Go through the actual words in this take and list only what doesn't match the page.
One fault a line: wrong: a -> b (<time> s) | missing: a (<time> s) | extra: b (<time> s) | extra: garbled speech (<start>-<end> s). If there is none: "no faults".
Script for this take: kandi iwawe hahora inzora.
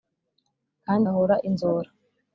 missing: iwawe (1.1 s)